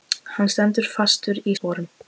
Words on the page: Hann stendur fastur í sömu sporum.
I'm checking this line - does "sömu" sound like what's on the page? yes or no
no